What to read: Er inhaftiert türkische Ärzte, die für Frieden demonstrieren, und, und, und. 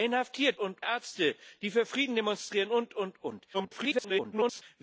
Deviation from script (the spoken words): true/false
true